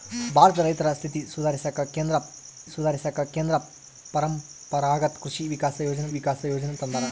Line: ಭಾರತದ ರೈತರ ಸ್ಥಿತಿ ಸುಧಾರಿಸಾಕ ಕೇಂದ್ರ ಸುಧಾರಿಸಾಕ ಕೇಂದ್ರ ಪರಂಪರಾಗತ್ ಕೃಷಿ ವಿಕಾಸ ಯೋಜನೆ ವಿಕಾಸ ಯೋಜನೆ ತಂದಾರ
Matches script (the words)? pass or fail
pass